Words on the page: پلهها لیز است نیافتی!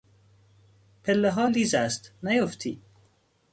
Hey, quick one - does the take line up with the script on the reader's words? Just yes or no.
yes